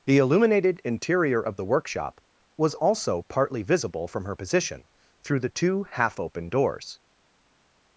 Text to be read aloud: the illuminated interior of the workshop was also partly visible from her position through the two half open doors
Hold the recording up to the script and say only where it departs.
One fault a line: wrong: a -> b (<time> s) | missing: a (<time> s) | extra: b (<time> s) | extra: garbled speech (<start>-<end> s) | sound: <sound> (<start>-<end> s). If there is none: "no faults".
no faults